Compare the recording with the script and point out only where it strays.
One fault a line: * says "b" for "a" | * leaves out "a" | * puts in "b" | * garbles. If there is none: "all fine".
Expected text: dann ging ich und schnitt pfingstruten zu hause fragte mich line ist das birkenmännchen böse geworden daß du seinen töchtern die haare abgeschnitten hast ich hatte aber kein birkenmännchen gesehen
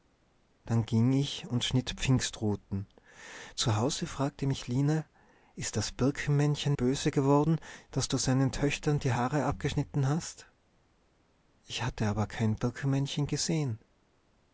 all fine